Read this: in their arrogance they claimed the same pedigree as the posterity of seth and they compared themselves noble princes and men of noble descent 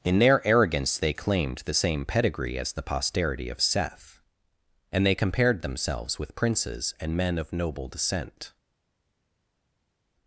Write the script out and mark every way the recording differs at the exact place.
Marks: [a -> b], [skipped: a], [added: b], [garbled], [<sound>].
in their arrogance they claimed the same pedigree as the posterity of seth and they compared themselves [noble -> with] princes and men of noble descent